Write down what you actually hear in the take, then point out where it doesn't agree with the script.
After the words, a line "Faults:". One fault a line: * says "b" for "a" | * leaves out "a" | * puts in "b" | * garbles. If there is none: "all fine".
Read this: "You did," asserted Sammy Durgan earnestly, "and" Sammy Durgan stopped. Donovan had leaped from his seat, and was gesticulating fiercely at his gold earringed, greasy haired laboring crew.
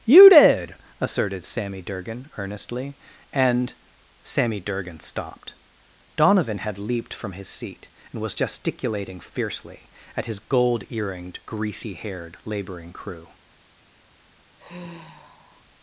"You did," asserted Sammy Durgan earnestly, "and" Sammy Durgan stopped. Donovan had leaped from his seat, and was gesticulating fiercely at his gold earringed, greasy haired laboring crew.
Faults:
all fine